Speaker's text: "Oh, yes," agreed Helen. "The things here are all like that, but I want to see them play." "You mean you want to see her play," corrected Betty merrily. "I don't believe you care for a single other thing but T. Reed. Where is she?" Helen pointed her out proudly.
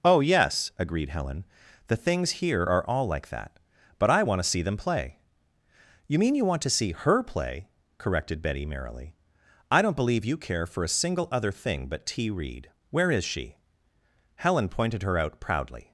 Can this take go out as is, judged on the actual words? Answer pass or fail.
pass